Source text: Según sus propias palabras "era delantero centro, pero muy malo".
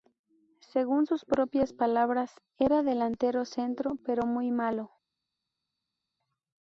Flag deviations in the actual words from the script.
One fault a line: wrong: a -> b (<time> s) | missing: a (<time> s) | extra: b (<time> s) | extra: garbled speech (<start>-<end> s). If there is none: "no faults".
no faults